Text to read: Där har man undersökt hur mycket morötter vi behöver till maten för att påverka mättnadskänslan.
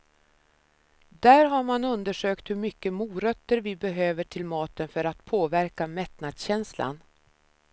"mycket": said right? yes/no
yes